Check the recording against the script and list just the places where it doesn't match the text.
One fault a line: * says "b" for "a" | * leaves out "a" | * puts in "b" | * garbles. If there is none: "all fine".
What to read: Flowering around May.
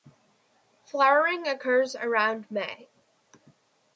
* puts in "occurs"